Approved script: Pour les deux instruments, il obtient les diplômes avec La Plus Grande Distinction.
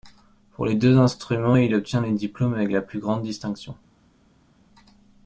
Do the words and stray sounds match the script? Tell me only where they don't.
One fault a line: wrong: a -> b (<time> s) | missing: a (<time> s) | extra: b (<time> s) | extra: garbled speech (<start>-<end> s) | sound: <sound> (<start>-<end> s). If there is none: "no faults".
no faults